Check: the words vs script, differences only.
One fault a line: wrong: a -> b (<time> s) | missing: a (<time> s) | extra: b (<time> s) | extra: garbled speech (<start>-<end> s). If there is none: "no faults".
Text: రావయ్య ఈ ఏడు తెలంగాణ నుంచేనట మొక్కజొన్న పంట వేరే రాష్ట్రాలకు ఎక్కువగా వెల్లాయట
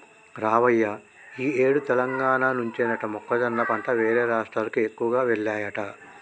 no faults